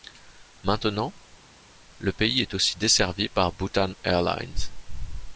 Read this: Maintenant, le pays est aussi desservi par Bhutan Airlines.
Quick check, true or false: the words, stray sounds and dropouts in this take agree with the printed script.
true